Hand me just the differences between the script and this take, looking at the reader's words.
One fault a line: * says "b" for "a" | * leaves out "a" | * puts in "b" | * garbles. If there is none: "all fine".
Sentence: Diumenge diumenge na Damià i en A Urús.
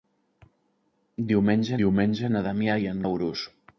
all fine